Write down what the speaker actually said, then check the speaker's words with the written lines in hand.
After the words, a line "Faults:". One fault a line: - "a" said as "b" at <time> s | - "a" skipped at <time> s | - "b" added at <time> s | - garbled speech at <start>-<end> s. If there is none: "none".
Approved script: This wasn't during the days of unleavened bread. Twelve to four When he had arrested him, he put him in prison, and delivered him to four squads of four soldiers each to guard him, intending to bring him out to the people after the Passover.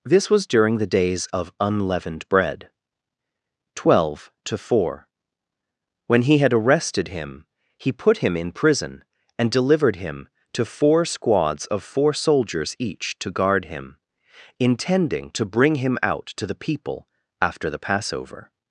This was during the days of unleavened bread. Twelve to four When he had arrested him, he put him in prison, and delivered him to four squads of four soldiers each to guard him, intending to bring him out to the people after the Passover.
Faults:
- "wasn't" said as "was" at 0.3 s